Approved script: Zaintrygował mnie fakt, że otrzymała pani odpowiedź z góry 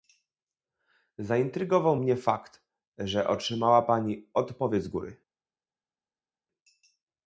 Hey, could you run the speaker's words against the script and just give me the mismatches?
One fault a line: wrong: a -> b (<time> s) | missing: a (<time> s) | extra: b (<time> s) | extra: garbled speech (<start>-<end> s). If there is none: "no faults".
no faults